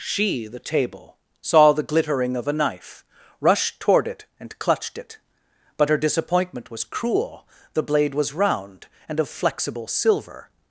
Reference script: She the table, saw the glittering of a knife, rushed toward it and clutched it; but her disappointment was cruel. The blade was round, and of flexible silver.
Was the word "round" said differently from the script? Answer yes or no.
no